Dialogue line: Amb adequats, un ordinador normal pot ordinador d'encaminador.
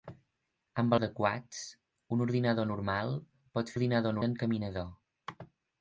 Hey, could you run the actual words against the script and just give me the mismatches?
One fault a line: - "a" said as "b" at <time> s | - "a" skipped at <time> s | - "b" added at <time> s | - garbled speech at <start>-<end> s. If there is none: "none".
none